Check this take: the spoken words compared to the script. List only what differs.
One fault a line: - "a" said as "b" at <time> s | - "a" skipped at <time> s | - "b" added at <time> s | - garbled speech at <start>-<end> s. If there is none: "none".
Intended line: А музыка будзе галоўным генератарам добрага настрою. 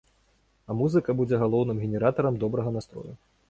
none